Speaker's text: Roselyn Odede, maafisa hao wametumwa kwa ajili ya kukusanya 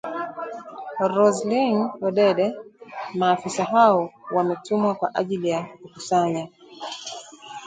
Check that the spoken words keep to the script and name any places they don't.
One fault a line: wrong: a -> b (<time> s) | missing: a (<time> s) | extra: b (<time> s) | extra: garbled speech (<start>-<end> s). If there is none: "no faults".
no faults